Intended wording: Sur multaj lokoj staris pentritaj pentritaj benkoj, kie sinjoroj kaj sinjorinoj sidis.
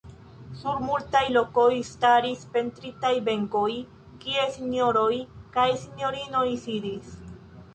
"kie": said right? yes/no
yes